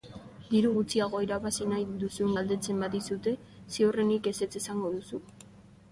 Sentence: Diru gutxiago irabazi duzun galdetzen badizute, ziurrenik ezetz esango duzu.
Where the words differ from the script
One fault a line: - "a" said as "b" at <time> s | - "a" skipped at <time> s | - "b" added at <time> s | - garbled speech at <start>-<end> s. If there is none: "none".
- "nahi" added at 1.7 s